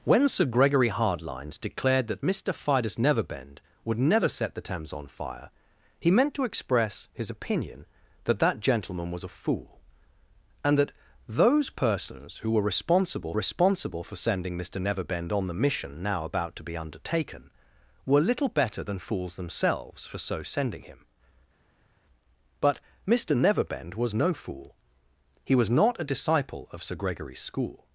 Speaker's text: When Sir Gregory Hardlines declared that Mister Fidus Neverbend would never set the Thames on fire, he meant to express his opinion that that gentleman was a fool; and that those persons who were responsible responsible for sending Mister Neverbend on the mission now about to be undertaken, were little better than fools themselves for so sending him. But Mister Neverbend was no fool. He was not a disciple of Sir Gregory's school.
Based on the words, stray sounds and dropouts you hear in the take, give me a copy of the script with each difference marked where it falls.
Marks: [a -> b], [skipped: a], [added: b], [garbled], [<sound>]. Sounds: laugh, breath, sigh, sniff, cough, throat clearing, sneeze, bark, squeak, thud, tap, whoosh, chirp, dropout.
When Sir Gregory Hardlines declared that Mister Fidus Neverbend would never set the Thames on fire, he meant to express his opinion that that gentleman was a fool; and that those persons who were responsible responsible for sending Mister Neverbend on the mission now about to be undertaken, were little better than fools themselves for so sending him. But Mister Neverbend was no fool. He was not a disciple of Sir Gregory's school.